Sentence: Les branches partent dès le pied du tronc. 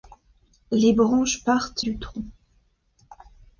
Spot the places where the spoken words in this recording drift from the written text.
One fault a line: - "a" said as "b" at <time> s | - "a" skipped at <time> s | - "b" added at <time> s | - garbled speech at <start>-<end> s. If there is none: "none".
- "dès le pied" skipped at 1.8 s